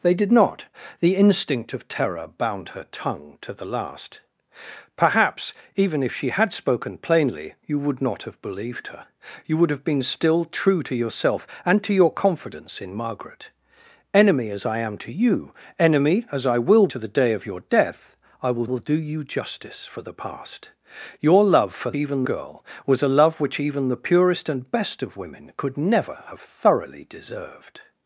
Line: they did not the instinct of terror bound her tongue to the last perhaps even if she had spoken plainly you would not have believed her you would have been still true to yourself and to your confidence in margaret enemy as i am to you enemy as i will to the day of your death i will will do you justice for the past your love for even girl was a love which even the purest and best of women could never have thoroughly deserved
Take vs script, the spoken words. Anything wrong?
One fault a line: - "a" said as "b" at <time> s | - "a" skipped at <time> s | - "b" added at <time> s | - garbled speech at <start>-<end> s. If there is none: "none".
none